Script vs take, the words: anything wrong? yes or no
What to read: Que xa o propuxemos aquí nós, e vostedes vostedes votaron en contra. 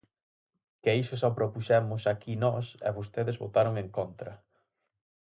yes